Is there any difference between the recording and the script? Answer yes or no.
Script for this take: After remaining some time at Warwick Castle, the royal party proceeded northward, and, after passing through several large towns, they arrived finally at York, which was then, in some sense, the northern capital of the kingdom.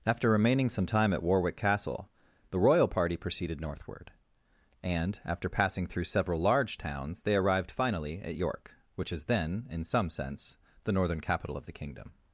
yes